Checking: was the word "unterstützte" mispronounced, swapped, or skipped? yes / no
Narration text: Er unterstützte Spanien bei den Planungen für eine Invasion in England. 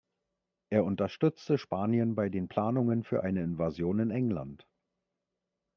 no